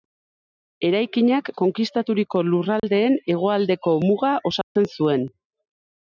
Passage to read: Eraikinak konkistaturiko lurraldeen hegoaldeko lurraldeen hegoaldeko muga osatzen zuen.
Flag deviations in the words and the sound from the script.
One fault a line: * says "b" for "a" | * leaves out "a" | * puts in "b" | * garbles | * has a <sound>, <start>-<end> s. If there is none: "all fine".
* has a dropout, 2.8-2.8 s
* leaves out "lurraldeen hegoaldeko"
* has a dropout, 4.6-4.8 s